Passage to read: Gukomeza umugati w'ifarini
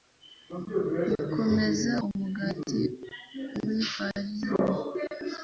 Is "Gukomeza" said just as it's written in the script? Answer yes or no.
yes